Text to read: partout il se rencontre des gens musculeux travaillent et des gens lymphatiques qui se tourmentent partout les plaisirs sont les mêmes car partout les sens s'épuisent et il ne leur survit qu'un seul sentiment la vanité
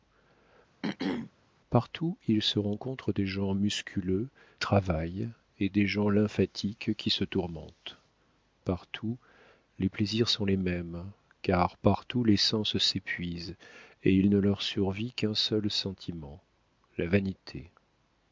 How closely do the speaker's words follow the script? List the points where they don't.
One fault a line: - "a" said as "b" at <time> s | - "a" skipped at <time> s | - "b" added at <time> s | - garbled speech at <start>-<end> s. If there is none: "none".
none